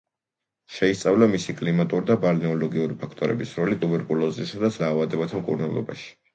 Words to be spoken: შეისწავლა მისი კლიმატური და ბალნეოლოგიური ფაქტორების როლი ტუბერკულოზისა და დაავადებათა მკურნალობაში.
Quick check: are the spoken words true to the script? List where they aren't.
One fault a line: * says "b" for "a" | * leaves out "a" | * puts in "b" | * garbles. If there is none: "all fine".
all fine